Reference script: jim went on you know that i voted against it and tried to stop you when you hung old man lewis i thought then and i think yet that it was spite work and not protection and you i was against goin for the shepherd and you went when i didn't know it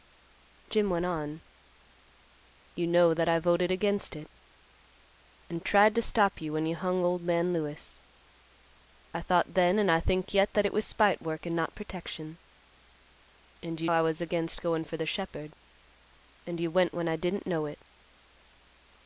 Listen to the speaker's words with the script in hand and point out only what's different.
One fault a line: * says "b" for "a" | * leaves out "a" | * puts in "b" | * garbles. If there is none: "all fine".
all fine